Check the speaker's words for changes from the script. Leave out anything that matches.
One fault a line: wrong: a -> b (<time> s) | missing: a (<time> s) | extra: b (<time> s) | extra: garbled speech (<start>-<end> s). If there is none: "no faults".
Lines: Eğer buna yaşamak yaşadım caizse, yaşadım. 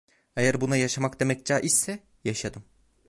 wrong: yaşadım -> demek (1.2 s)